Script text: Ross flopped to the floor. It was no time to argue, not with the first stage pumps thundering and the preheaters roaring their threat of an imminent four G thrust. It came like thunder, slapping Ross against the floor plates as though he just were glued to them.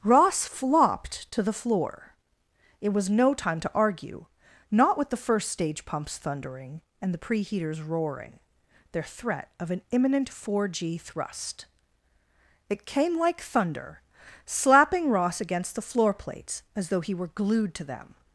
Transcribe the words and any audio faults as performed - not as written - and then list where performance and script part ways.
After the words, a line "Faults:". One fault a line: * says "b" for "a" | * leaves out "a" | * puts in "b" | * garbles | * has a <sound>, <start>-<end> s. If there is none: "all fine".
Ross flopped to the floor. It was no time to argue, not with the first stage pumps thundering and the preheaters roaring their threat of an imminent four G thrust. It came like thunder, slapping Ross against the floor plates as though he were glued to them.
Faults:
* leaves out "just"